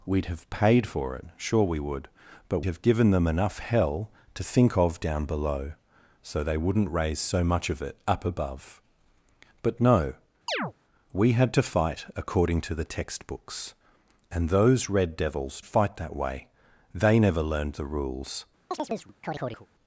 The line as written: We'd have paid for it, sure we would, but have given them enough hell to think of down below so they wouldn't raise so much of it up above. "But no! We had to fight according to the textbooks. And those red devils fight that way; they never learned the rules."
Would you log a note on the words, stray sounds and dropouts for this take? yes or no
yes